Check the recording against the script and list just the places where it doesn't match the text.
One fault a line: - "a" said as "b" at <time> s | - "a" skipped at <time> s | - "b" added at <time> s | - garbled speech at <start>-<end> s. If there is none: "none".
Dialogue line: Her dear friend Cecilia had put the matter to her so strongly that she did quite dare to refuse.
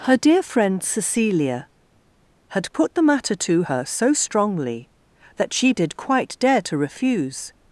none